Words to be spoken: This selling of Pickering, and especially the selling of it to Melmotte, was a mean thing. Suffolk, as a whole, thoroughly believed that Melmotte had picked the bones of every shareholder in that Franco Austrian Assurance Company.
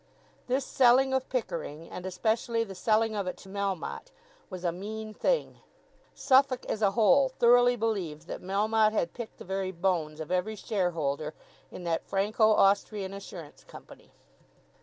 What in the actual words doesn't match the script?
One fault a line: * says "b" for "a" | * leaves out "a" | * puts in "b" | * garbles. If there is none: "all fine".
* puts in "very"